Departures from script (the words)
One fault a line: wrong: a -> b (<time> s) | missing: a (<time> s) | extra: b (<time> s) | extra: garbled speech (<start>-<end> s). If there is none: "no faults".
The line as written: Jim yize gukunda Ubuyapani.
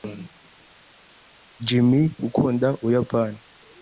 missing: yize (1.9 s)